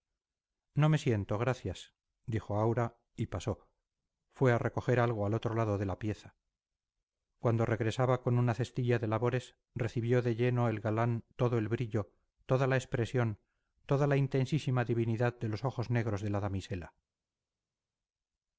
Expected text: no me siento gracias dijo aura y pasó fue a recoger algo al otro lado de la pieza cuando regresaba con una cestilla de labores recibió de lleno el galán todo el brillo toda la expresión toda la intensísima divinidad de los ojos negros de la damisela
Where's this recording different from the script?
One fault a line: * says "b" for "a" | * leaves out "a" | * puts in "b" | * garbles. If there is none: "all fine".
all fine